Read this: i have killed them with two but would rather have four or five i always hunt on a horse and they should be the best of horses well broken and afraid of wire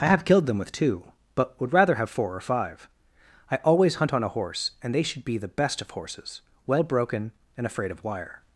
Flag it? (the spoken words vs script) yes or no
no